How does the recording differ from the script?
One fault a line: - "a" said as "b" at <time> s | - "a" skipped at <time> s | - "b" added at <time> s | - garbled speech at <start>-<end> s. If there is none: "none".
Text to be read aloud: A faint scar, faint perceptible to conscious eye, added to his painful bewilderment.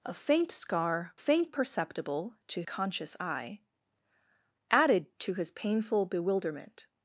none